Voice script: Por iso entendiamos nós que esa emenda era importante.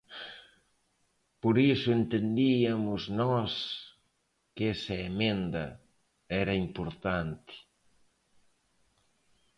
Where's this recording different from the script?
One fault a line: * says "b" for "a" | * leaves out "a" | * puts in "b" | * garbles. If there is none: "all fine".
all fine